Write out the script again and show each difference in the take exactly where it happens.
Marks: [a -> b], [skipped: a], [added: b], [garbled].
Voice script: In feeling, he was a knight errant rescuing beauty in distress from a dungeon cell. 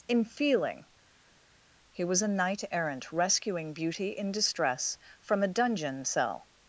In feeling, he was a knight errant rescuing beauty in distress from a dungeon cell.